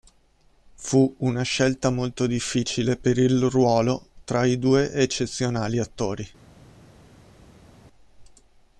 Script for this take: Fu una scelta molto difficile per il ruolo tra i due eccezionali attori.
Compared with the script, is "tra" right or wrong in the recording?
right